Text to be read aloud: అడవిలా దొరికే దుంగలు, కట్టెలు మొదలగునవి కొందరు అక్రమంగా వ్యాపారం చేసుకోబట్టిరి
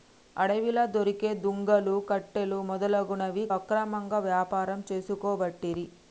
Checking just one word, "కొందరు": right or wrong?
wrong